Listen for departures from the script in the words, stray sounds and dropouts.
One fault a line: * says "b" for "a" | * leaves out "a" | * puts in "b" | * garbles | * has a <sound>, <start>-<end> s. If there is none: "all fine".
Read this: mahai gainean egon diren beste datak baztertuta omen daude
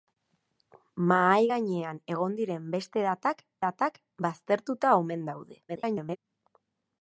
* puts in "datak"
* garbles